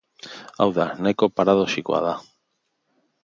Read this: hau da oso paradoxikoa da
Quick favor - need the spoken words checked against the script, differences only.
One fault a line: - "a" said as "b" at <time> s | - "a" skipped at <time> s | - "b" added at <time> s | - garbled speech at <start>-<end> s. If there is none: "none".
- "oso" said as "nahiko" at 1.1 s